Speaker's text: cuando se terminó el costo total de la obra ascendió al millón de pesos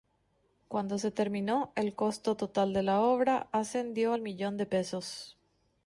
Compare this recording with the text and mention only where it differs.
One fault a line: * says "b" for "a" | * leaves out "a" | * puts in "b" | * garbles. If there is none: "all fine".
all fine